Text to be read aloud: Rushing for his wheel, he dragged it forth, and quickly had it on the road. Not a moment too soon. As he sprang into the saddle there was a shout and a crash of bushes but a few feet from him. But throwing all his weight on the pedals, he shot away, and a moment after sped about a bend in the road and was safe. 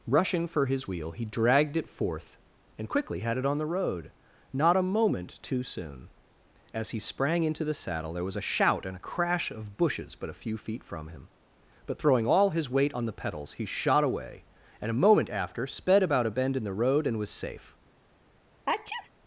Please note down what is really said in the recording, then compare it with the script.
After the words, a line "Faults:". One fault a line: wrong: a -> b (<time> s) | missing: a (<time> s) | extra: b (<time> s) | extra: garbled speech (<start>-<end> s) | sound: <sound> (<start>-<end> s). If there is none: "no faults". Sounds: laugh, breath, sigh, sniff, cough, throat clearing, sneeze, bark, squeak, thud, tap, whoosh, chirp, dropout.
Rushing for his wheel, he dragged it forth, and quickly had it on the road. Not a moment too soon. As he sprang into the saddle there was a shout and a crash of bushes but a few feet from him. But throwing all his weight on the pedals, he shot away, and a moment after sped about a bend in the road and was safe.
Faults:
sound: sneeze (18.7-19.1 s)